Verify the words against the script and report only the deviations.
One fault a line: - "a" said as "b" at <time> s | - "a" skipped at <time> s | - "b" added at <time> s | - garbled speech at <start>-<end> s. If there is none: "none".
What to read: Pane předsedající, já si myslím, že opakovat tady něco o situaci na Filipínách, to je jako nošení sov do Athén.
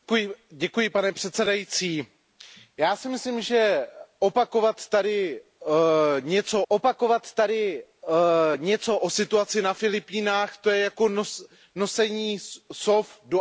- "opakovat tady něco" added at 6.7 s